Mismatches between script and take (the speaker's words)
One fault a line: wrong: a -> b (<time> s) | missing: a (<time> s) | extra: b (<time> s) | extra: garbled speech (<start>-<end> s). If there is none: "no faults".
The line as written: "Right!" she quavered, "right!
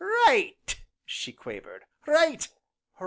no faults